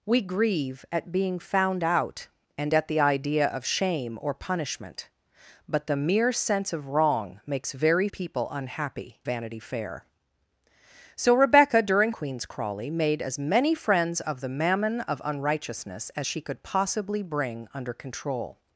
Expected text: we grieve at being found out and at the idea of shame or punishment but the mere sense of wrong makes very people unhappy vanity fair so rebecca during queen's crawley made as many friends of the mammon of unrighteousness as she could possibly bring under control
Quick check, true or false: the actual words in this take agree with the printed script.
true